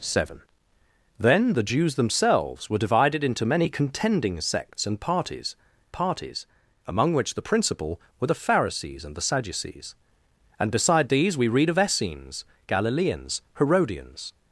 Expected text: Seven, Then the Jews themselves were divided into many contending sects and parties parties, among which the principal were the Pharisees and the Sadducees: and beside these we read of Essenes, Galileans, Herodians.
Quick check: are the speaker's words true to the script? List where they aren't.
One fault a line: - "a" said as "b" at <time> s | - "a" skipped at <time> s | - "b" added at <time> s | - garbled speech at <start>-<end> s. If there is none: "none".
none